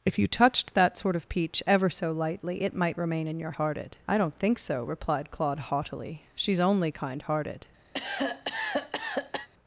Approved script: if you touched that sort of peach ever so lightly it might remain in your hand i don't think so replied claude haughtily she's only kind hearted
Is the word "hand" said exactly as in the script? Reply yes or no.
no